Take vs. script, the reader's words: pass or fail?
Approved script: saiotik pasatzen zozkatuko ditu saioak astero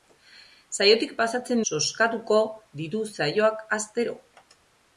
pass